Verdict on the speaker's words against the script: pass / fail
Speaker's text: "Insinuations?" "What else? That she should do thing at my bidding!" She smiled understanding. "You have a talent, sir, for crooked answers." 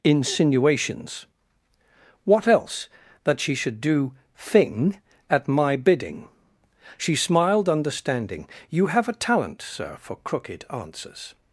pass